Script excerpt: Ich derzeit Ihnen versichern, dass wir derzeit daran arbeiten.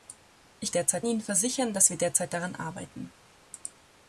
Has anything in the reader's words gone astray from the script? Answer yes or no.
no